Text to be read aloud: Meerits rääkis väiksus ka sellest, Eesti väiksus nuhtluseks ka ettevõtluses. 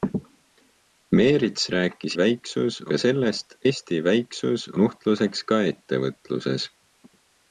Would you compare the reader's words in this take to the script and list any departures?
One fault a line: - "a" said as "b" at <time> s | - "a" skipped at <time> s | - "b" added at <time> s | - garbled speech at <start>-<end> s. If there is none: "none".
none